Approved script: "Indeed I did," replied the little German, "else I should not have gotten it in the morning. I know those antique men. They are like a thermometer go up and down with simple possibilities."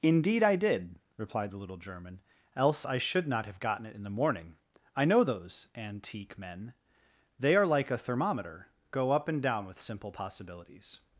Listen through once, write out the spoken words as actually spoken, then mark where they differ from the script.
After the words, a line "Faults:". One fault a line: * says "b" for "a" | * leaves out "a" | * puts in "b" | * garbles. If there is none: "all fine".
"Indeed I did," replied the little German, "else I should not have gotten it in the morning. I know those antique men. They are like a thermometer go up and down with simple possibilities."
Faults:
all fine